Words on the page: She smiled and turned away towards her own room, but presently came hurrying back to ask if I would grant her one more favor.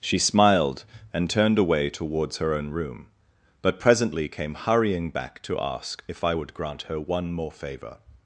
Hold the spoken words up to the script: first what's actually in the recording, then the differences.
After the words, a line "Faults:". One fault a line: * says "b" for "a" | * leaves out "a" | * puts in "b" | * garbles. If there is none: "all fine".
She smiled and turned away towards her own room, but presently came hurrying back to ask if I would grant her one more favor.
Faults:
all fine